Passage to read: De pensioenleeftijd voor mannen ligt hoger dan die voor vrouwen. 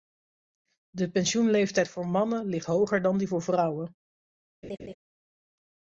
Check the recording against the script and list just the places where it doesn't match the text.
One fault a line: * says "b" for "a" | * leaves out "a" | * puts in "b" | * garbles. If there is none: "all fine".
all fine